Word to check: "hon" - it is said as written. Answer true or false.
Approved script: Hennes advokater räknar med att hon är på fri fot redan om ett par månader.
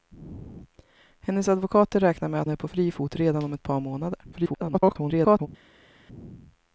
false